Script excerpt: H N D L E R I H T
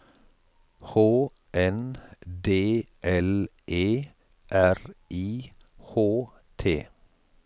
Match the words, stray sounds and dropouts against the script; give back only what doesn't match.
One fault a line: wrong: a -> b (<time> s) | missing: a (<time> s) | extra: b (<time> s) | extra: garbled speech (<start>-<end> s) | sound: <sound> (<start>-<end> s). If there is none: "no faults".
no faults